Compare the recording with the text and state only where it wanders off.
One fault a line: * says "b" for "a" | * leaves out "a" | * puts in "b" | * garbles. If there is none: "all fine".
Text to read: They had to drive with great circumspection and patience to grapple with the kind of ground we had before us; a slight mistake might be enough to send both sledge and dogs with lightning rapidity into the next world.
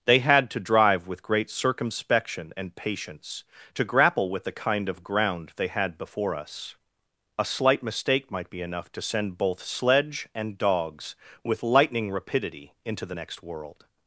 * says "they" for "we"